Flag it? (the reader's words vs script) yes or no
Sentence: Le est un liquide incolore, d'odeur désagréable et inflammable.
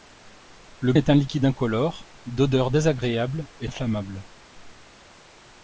no